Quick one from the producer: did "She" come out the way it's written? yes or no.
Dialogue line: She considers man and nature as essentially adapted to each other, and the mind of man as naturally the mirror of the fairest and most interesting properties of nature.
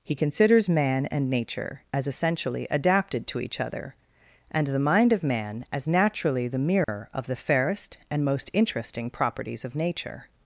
no